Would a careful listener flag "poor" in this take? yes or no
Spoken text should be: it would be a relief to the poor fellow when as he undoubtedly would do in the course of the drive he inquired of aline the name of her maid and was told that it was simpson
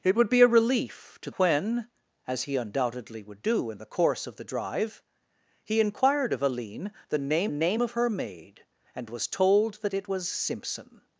yes